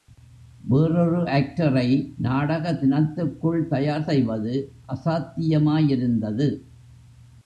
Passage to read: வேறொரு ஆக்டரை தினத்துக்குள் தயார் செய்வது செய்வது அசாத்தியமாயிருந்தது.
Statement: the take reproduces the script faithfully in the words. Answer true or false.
false